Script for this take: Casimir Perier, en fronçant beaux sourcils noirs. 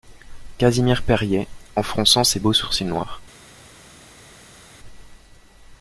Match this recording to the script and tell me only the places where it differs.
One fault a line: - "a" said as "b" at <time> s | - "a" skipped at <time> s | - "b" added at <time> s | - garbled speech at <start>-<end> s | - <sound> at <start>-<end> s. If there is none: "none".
- "ses" added at 2.2 s